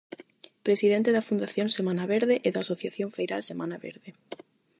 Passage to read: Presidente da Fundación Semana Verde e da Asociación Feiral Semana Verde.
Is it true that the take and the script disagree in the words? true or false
false